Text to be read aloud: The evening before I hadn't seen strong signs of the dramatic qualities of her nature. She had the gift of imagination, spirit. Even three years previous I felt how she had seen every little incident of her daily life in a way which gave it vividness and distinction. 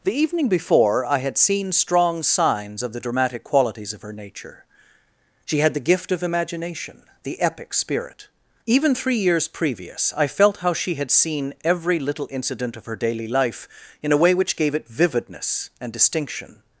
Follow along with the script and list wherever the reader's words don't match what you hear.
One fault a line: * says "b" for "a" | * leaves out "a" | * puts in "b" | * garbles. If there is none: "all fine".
* says "had" for "hadn't"
* puts in "the epic"